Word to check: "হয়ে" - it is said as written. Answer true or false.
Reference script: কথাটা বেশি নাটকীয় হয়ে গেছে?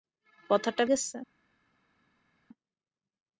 false